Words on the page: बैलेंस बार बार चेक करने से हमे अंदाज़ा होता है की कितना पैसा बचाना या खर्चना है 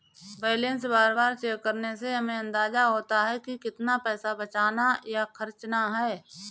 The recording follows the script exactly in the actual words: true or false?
true